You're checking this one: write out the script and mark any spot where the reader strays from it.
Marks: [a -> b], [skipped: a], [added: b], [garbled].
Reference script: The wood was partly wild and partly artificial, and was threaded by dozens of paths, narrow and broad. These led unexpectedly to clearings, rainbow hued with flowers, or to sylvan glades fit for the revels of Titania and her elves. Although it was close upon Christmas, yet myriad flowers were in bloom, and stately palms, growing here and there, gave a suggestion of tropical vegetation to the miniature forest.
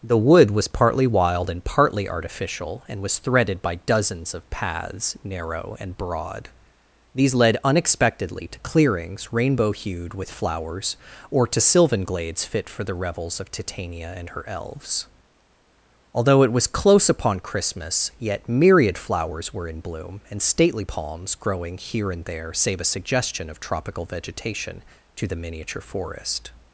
The wood was partly wild and partly artificial, and was threaded by dozens of paths, narrow and broad. These led unexpectedly to clearings, rainbow hued with flowers, or to sylvan glades fit for the revels of Titania and her elves. Although it was close upon Christmas, yet myriad flowers were in bloom, and stately palms, growing here and there, [gave -> save] a suggestion of tropical vegetation to the miniature forest.